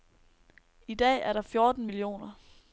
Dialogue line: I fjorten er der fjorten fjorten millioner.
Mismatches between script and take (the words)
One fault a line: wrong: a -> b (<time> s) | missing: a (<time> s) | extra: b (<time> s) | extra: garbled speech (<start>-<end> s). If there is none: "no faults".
wrong: fjorten -> dag (0.9 s)
missing: fjorten (1.9 s)